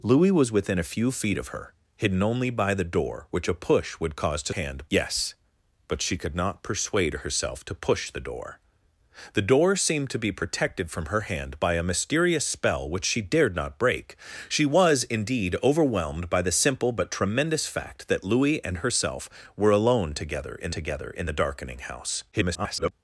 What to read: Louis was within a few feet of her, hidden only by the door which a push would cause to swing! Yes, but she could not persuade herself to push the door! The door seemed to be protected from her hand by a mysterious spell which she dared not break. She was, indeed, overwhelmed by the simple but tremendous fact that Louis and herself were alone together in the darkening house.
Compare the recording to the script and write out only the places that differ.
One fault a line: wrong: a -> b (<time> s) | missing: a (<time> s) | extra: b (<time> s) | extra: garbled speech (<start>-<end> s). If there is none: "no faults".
wrong: swing -> hand (4.5 s)
extra: together in (20.7 s)
extra: garbled speech (22.3-22.9 s)